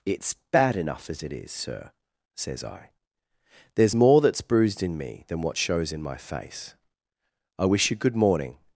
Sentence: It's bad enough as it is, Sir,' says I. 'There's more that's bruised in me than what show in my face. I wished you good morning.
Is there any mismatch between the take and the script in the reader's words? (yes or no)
yes